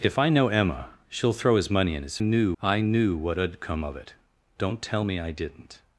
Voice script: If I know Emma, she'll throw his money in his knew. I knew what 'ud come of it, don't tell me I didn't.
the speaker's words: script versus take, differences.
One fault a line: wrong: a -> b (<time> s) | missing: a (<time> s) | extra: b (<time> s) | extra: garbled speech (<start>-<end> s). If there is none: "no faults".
no faults